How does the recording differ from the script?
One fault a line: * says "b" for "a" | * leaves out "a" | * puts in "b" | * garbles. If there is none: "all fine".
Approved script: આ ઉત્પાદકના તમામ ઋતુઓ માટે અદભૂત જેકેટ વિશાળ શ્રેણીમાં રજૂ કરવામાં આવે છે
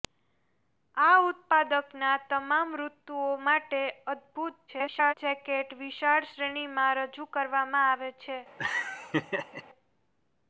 * garbles